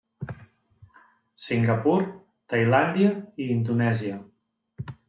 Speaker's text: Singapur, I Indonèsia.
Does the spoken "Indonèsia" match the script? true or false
true